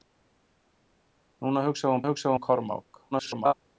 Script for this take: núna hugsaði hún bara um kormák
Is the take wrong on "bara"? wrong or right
wrong